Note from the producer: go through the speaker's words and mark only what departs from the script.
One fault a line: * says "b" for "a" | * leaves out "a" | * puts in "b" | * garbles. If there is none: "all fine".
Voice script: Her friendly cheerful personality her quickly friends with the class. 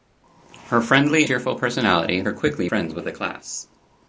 all fine